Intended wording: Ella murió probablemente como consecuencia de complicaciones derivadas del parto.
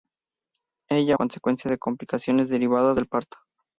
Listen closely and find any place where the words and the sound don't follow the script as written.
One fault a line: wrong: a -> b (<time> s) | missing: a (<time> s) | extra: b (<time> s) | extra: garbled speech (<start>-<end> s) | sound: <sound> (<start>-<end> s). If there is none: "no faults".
missing: murió probablemente como (1.2 s)